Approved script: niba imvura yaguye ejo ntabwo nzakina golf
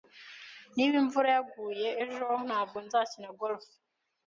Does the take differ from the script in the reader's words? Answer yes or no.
no